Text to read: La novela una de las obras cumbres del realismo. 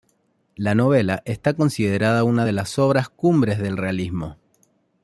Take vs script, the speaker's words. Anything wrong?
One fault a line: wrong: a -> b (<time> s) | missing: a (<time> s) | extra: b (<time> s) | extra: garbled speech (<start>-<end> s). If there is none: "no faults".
extra: está considerada (1.2 s)